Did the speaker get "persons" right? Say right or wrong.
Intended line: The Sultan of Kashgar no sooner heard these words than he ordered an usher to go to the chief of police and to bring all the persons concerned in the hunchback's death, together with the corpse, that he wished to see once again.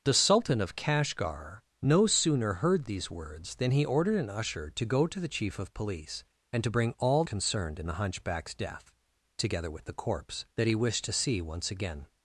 wrong